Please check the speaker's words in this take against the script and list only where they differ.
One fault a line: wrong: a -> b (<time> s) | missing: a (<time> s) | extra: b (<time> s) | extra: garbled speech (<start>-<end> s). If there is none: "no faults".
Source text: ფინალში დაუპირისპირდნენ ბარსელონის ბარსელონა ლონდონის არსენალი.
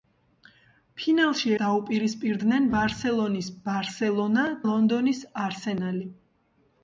no faults